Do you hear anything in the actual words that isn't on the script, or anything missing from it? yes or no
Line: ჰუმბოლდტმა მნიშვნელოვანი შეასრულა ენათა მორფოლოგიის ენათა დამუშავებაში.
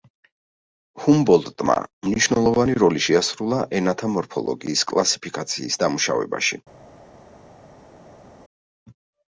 yes